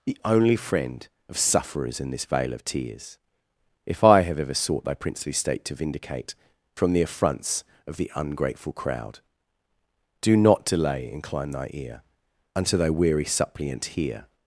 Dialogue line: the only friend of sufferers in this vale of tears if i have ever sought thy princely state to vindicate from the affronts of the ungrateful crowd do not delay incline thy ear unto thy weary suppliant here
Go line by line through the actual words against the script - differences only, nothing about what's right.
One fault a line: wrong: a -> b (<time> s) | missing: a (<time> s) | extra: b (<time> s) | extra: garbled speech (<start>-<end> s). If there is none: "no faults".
no faults